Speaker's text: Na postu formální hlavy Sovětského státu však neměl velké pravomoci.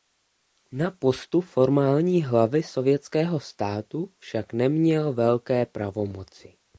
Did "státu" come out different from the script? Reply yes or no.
no